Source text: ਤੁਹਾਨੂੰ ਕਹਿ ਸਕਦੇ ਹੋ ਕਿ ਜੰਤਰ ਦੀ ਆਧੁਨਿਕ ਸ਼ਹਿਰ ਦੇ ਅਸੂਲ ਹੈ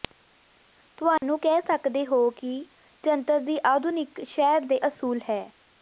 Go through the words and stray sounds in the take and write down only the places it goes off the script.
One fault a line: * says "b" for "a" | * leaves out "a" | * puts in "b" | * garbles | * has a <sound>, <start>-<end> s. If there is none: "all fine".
* has a dropout, 1.2-1.2 s